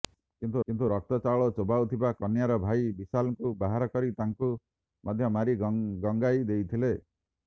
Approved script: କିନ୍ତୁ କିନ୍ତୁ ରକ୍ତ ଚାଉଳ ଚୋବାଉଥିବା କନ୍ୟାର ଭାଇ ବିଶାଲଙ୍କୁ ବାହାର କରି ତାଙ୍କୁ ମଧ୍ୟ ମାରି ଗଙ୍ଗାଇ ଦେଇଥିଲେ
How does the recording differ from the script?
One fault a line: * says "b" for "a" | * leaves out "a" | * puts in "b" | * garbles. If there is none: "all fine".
all fine